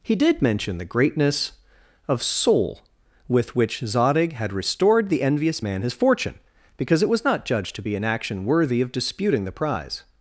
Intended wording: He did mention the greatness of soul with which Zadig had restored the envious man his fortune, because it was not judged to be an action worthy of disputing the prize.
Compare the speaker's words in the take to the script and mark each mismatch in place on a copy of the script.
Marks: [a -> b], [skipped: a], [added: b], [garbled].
He did mention the greatness of soul with which Zadig had restored the envious man his fortune, because it was not judged to be an action worthy of disputing the prize.